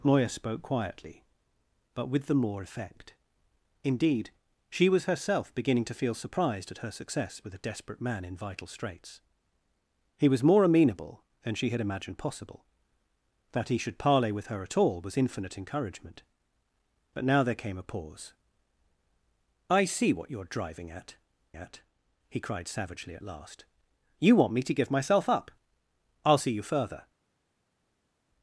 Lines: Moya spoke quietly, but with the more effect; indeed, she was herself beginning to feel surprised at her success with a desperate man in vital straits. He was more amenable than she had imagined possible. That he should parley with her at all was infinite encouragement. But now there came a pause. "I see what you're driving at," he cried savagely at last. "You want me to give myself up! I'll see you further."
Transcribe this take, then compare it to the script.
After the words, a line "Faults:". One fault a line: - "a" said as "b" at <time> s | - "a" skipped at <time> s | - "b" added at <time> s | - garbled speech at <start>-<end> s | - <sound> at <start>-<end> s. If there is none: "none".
Moya spoke quietly, but with the more effect; indeed, she was herself beginning to feel surprised at her success with a desperate man in vital straits. He was more amenable than she had imagined possible. That he should parley with her at all was infinite encouragement. But now there came a pause. "I see what you're driving at at," he cried savagely at last. "You want me to give myself up! I'll see you further."
Faults:
- "at" added at 21.5 s